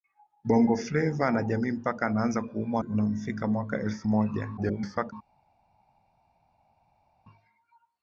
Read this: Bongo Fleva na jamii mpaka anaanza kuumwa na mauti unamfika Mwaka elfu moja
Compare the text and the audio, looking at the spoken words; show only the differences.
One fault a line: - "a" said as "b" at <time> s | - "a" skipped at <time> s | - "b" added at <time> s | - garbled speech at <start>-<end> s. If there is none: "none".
- "na mauti" skipped at 2.8 s
- garbled speech at 4.6-5.1 s